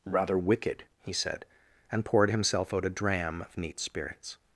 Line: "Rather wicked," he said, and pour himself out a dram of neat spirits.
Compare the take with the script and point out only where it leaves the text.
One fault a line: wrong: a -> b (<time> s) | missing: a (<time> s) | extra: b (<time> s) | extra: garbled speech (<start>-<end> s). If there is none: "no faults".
wrong: pour -> poured (2.0 s)